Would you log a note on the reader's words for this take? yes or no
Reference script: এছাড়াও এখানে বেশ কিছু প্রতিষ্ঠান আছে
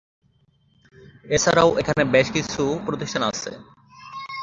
no